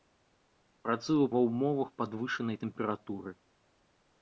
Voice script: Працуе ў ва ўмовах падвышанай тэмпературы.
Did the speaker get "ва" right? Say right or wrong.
right